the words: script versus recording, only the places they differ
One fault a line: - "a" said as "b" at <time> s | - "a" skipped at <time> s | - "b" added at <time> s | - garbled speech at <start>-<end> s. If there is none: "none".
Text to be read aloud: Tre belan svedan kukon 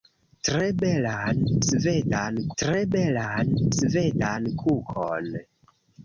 - "tre belan svedan" added at 2.6 s